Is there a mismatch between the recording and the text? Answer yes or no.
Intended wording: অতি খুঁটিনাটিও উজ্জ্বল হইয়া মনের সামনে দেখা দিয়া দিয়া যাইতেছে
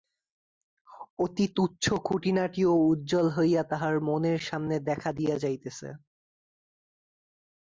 yes